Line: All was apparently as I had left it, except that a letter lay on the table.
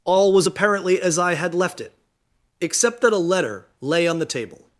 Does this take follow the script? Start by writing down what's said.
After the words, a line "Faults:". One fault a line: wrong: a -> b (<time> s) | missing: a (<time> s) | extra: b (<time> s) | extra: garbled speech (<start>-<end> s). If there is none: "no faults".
All was apparently as I had left it, except that a letter lay on the table.
Faults:
no faults